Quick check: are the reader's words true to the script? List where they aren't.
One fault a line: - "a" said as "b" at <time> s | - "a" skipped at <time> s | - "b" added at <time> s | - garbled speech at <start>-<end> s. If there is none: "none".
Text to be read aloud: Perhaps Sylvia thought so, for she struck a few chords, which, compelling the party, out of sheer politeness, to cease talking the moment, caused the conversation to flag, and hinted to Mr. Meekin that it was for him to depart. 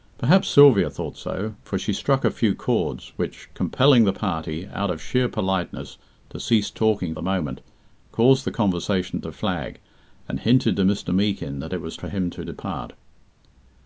none